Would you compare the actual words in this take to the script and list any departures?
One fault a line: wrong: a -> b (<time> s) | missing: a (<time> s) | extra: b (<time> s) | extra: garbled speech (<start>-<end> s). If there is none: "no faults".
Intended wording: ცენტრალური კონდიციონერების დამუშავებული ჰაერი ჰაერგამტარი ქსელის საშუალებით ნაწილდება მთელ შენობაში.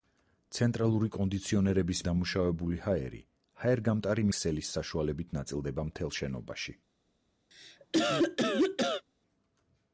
no faults